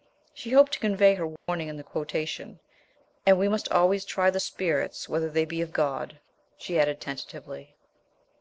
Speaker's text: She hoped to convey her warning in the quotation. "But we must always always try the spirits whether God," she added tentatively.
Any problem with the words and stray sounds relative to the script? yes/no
yes